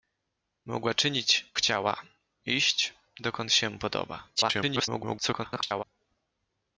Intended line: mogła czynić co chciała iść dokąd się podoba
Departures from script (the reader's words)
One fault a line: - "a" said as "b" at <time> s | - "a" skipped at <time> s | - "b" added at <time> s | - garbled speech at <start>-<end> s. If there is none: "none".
- "co" skipped at 1.5 s
- garbled speech at 4.4-5.8 s